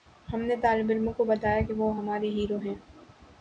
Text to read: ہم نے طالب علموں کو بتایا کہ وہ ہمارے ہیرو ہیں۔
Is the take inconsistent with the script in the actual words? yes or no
no